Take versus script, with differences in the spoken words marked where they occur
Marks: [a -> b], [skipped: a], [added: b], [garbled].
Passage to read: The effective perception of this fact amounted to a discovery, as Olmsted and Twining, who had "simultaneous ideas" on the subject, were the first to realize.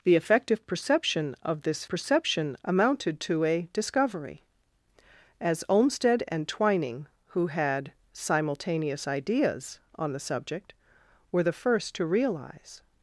The effective perception of this [fact -> perception] amounted to a discovery, as Olmsted and Twining, who had "simultaneous ideas" on the subject, were the first to realize.